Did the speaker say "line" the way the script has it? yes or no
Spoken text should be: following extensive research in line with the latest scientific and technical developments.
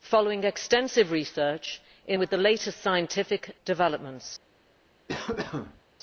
no